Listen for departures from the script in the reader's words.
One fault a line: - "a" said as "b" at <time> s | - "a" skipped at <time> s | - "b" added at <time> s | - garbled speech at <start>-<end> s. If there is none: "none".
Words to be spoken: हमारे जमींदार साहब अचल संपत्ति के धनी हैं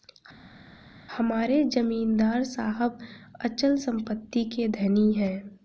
none